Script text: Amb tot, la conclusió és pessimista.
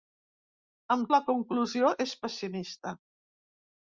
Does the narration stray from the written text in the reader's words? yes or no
yes